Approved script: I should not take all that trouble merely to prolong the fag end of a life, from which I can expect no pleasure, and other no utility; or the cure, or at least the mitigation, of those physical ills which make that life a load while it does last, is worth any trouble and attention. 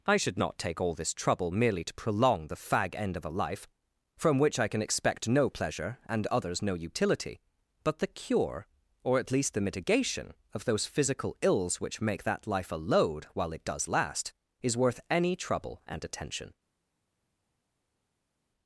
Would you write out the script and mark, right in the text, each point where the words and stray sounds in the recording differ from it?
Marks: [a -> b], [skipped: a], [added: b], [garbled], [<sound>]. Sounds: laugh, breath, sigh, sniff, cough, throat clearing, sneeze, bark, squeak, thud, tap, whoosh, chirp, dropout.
I should not take all [that -> this] trouble merely to prolong the fag end of a life, from which I can expect no pleasure, and [other -> others] no utility; [or -> but] the cure, or at least the mitigation, of those physical ills which make that life a load while it does last, is worth any trouble and attention.